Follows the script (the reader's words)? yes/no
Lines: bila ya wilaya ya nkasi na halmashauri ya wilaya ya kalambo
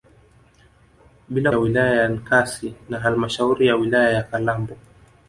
yes